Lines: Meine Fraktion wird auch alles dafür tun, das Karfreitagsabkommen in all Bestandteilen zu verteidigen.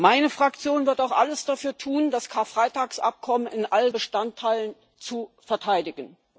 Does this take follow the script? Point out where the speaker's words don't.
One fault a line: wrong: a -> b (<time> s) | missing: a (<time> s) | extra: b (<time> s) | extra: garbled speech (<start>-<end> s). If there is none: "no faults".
no faults